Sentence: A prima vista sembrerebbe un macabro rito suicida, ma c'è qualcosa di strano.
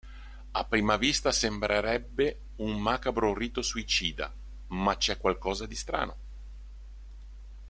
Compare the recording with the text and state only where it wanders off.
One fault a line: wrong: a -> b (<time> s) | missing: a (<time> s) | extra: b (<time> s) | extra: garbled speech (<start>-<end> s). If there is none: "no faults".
no faults